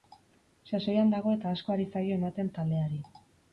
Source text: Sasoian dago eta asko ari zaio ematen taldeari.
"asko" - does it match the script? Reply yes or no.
yes